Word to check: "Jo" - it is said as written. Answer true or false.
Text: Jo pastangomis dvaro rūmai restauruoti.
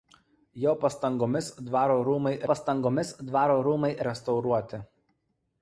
true